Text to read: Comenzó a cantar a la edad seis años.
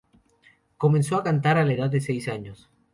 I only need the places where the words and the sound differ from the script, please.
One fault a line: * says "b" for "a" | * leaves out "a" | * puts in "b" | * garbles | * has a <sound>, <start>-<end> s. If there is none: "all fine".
* puts in "de"